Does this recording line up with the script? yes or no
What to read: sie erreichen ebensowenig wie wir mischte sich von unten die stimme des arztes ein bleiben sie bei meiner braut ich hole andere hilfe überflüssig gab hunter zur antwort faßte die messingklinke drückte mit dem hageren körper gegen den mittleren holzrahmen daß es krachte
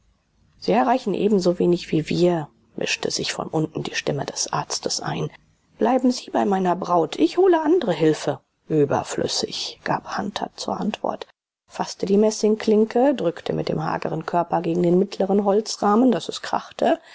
yes